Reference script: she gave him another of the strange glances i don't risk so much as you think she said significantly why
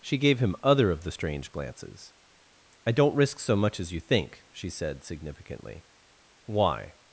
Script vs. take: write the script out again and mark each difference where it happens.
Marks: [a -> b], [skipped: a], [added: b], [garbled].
she gave him [another -> other] of the strange glances i don't risk so much as you think she said significantly why